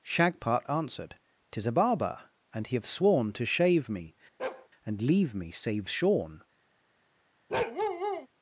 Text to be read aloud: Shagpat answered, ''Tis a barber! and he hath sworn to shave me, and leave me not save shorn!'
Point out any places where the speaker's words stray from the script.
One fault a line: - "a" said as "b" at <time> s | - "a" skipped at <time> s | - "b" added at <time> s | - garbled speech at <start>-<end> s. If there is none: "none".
- "hath" said as "have" at 2.8 s
- "not" skipped at 5.5 s